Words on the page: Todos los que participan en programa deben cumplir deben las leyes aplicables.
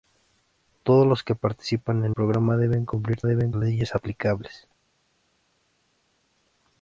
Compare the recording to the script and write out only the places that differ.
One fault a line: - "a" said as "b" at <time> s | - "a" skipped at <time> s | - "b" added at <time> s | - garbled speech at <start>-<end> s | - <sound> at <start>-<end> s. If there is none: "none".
none